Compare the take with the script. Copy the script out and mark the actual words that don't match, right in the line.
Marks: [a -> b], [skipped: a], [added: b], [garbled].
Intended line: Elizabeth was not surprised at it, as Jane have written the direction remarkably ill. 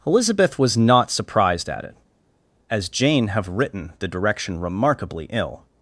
Elizabeth was not surprised at it, as Jane have written the direction remarkably ill.